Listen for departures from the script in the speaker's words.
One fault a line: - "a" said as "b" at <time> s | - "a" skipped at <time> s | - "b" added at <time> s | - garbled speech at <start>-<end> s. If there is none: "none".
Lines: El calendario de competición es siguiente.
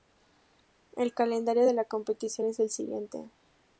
- "la" added at 1.7 s
- "el" added at 2.6 s